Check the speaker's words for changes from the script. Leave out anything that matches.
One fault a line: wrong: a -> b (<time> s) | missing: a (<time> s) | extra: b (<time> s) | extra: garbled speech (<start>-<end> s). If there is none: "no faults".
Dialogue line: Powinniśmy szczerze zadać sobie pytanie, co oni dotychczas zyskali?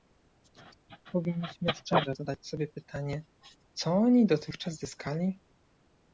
no faults